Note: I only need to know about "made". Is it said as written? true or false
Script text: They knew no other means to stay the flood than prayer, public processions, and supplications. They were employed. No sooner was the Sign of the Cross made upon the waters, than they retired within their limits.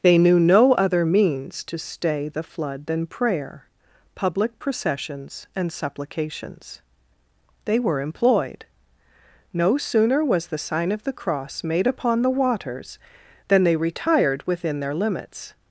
true